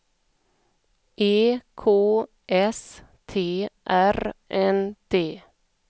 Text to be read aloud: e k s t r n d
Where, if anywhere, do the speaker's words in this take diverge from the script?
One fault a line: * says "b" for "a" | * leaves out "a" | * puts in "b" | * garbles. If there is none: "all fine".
all fine